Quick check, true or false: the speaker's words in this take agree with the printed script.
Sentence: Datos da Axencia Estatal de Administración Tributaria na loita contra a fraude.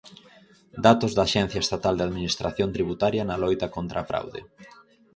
true